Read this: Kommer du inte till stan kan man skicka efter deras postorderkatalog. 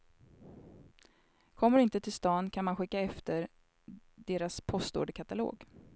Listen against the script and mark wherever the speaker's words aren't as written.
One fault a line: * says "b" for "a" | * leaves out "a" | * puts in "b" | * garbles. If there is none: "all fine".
all fine